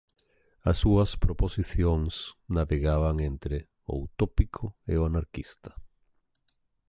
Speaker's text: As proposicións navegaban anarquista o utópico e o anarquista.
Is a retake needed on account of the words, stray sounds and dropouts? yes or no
yes